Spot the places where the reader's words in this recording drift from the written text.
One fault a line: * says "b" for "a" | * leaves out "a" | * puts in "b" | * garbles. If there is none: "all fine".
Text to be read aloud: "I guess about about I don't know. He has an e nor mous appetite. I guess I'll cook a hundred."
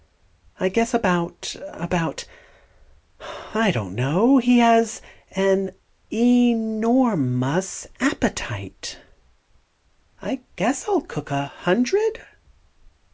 all fine